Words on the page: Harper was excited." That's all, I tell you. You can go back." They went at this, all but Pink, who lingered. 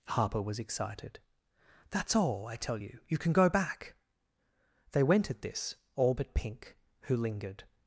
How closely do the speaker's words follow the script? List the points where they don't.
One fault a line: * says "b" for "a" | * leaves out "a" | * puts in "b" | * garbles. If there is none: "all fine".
all fine